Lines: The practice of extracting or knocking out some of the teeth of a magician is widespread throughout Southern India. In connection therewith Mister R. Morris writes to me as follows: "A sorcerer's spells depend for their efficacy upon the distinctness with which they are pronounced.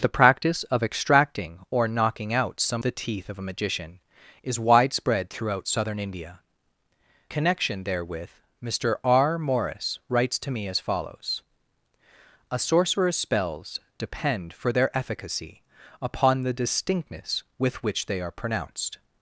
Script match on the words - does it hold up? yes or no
no